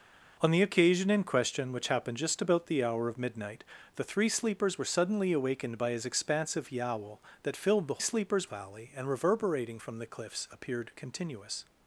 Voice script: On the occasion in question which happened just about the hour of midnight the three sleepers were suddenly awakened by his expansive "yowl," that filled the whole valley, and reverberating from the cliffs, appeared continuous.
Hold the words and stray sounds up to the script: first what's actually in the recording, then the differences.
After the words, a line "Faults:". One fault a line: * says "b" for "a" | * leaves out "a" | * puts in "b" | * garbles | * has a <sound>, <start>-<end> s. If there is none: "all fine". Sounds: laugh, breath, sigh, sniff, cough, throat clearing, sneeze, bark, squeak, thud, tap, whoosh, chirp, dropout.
On the occasion in question which happened just about the hour of midnight the three sleepers were suddenly awakened by his expansive "yowl," that filled the sleepers valley, and reverberating from the cliffs, appeared continuous.
Faults:
* says "sleepers" for "whole"